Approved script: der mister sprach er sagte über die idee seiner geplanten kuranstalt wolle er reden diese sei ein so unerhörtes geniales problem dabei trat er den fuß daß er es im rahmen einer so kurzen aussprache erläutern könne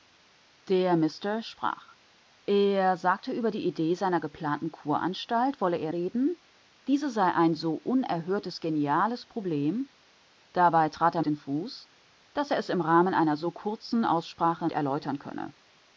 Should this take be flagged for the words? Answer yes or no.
no